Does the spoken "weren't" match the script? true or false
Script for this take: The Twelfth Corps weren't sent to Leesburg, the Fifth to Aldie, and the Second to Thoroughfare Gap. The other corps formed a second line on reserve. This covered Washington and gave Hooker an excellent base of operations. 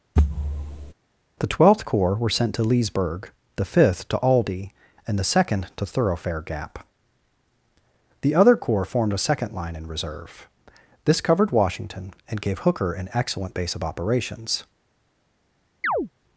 false